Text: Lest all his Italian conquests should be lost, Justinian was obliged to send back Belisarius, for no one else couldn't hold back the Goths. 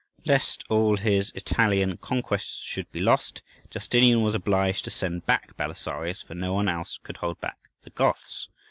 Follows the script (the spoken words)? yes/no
no